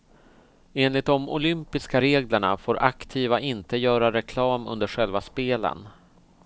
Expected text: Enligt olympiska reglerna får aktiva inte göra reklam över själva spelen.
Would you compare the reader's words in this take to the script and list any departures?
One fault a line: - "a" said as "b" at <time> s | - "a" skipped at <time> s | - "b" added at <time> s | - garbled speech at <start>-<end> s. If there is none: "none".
- "de" added at 1.1 s
- "över" said as "under" at 4.7 s